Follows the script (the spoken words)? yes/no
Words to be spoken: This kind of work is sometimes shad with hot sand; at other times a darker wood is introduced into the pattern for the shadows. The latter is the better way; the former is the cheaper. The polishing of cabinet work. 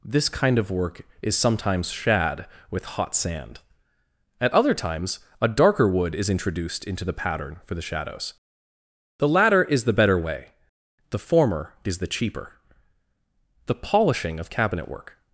yes